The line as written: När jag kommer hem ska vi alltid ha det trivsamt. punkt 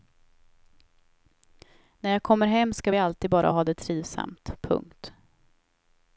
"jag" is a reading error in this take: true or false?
false